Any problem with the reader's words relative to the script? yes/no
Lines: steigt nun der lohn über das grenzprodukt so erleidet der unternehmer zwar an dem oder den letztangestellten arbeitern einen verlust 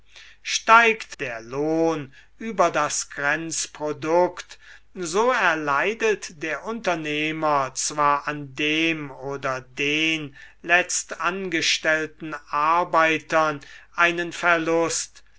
yes